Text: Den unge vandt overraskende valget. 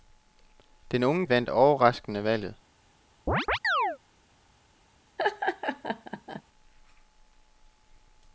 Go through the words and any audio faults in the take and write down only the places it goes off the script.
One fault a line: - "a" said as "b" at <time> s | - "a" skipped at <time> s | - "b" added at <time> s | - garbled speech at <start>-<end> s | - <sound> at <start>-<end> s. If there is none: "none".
- chirp at 3.3-4.0 s
- laugh at 5.2-6.4 s